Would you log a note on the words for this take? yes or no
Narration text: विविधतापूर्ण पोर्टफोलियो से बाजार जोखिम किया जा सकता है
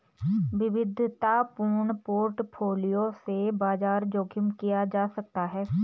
no